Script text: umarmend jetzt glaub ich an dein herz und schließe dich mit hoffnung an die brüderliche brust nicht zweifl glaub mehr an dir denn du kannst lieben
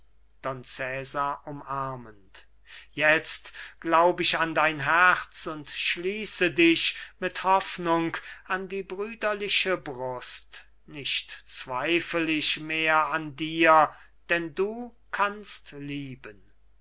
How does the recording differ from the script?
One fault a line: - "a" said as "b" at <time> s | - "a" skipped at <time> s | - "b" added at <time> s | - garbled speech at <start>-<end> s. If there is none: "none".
- "glaub" said as "ich" at 12.3 s